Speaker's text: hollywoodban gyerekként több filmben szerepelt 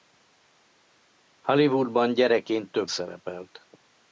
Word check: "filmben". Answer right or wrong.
wrong